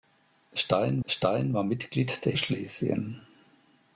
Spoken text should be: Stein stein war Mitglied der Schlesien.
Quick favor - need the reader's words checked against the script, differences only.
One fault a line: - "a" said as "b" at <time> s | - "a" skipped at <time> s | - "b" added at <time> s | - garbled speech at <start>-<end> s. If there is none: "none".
none